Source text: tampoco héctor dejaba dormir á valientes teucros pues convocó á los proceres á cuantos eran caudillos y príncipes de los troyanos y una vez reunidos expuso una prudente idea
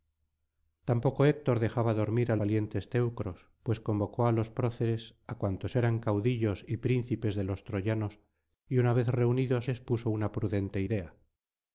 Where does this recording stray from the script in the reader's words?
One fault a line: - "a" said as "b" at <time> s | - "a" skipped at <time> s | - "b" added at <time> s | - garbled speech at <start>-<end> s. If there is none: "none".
none